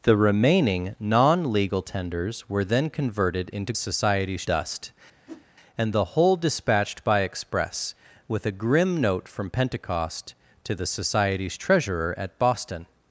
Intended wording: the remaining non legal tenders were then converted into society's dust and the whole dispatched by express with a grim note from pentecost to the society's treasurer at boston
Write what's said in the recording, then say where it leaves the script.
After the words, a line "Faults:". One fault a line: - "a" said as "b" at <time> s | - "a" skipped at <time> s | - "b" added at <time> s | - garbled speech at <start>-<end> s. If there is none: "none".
the remaining non legal tenders were then converted into society's dust and the whole dispatched by express with a grim note from pentecost to the society's treasurer at boston
Faults:
none